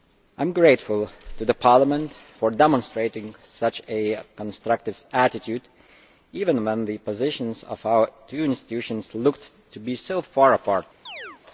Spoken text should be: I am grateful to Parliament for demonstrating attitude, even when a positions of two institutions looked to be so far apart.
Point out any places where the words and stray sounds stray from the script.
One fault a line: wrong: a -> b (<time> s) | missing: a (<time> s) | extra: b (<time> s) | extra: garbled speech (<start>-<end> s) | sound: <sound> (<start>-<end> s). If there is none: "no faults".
extra: such a constructive (3.4 s)
wrong: a -> the (6.8 s)
extra: our (7.8 s)
sound: chirp (11.1-11.4 s)